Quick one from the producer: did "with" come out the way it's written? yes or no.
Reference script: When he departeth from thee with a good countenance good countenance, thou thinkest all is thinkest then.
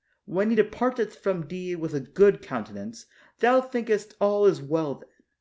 yes